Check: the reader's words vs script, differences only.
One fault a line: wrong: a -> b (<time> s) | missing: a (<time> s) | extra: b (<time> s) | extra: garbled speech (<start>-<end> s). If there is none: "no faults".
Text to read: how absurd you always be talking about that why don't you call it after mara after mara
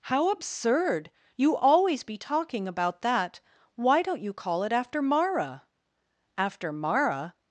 no faults